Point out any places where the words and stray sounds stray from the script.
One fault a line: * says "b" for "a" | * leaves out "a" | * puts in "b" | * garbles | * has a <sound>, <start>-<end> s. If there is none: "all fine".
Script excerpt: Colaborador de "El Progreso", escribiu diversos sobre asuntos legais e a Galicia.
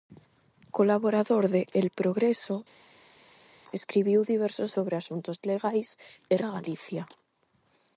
all fine